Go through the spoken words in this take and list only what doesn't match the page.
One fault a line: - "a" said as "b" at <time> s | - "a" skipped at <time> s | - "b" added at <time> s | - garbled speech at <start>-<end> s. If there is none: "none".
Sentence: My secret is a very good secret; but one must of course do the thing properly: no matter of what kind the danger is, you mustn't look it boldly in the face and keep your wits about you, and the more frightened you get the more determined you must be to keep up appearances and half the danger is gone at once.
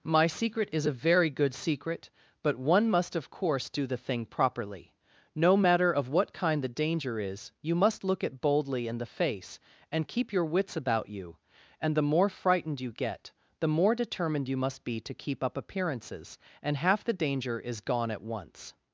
- "mustn't" said as "must" at 7.8 s